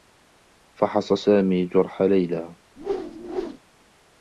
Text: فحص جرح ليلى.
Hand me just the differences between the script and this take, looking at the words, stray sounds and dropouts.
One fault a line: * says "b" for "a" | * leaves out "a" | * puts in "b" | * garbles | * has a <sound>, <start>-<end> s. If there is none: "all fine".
* puts in "سامي"
* has a whoosh, 2.8-3.6 s